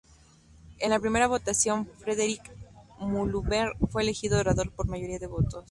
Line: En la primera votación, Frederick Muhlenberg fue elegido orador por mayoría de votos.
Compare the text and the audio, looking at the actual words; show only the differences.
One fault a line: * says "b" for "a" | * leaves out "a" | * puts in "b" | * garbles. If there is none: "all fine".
all fine